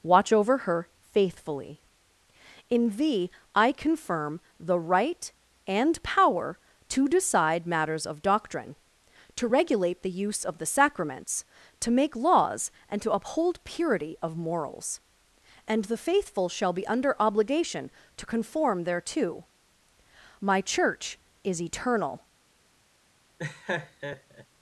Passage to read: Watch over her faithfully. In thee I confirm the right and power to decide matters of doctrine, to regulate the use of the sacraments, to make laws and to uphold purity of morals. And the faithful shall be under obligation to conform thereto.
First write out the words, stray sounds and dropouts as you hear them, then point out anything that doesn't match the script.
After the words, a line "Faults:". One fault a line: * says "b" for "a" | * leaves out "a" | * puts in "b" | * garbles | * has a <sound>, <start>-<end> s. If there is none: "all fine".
Watch over her faithfully. In thee I confirm the right and power to decide matters of doctrine, to regulate the use of the sacraments, to make laws and to uphold purity of morals. And the faithful shall be under obligation to conform thereto. My Church is eternal
Faults:
* puts in "My Church is eternal"
* has a laugh, 23.4-24.5 s